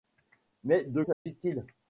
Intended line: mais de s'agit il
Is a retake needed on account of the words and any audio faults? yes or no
yes